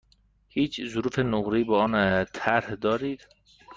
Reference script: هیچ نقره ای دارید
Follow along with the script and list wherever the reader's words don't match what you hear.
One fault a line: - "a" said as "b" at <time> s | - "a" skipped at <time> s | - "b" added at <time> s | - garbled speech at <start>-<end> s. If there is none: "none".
- "ظروف" added at 0.8 s
- "با آن طرح" added at 1.6 s